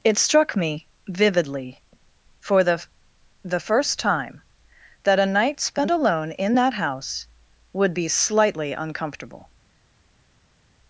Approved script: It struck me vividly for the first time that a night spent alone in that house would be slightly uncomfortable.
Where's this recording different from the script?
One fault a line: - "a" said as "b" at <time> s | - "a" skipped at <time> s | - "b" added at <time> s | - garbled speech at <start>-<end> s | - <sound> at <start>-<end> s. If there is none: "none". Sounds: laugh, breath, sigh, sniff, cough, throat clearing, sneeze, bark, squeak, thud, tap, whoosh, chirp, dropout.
- "the" added at 3.4 s